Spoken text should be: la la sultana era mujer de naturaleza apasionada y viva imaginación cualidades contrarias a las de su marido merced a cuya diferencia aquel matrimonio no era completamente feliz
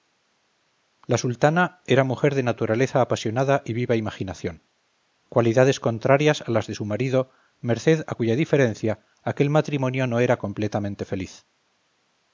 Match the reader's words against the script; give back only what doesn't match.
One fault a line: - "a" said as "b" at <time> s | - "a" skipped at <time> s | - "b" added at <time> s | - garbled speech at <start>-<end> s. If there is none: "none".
- "la" skipped at 1.2 s